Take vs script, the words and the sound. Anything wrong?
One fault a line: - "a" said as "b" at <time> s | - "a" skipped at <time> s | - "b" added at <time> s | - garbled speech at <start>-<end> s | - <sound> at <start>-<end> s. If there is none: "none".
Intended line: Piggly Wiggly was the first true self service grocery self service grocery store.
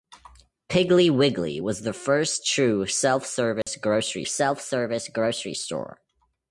- dropout at 3.6-3.7 s